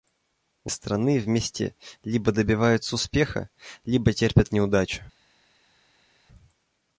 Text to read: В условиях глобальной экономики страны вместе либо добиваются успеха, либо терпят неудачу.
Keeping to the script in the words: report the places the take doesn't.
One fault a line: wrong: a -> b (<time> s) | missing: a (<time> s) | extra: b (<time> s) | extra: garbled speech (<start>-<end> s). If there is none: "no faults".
missing: условиях глобальной экономики (0.7 s)